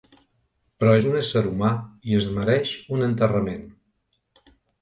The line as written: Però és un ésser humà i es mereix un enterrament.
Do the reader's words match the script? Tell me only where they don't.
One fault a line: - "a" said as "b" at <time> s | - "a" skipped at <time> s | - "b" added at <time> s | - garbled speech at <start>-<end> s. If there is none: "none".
none